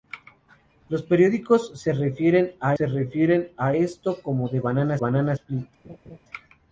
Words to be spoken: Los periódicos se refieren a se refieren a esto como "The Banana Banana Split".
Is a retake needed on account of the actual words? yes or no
no